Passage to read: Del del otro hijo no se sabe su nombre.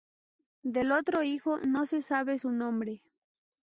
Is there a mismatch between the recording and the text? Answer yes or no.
yes